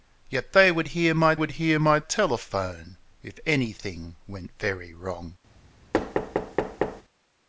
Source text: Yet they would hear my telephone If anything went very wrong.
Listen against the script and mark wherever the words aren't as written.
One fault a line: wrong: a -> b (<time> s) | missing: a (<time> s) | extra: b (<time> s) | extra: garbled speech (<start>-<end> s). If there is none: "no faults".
extra: would hear my (1.3 s)